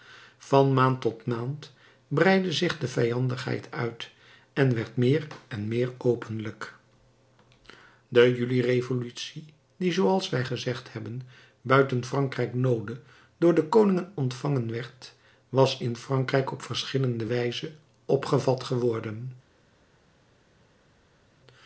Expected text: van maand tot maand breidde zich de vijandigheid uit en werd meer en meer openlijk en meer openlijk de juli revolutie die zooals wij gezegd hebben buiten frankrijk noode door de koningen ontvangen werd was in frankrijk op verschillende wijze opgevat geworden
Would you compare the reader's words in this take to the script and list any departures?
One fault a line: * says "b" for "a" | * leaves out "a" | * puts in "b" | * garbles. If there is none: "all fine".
* leaves out "en meer openlijk"